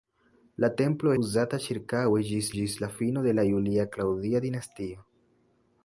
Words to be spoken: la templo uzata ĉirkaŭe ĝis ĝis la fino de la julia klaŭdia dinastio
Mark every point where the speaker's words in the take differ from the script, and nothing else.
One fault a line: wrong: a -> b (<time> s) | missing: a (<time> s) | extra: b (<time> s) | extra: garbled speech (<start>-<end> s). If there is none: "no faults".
no faults